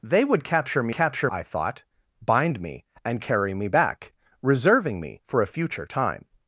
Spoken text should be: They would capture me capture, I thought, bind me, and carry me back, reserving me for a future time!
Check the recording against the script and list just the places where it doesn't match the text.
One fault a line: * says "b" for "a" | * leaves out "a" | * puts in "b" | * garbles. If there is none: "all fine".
all fine